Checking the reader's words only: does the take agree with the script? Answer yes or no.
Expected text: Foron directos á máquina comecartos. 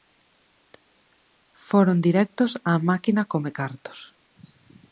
yes